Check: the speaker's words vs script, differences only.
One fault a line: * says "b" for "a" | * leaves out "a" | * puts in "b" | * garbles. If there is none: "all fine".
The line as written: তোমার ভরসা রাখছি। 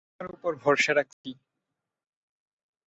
* puts in "উপর"